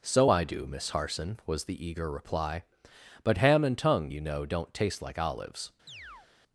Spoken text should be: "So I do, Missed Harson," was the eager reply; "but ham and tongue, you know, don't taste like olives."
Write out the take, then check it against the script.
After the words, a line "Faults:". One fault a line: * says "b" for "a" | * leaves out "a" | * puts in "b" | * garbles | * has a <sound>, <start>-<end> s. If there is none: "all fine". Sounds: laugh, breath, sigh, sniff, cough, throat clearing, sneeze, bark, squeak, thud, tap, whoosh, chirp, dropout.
"So I do, Miss Harson," was the eager reply; "but ham and tongue, you know, don't taste like olives."
Faults:
* says "Miss" for "Missed"
* has a chirp, 5.9-6.3 s